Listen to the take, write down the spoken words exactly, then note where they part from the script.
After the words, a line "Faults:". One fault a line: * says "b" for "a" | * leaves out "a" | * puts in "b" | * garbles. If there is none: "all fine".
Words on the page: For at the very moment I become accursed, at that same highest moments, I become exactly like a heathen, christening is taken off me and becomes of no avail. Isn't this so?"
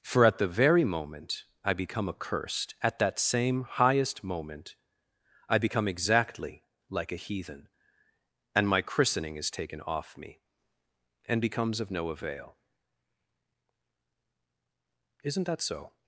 For at the very moment I become accursed, at that same highest moment, I become exactly like a heathen, and my christening is taken off me and becomes of no avail. Isn't that so?"
Faults:
* says "moment" for "moments"
* puts in "and my"
* says "that" for "this"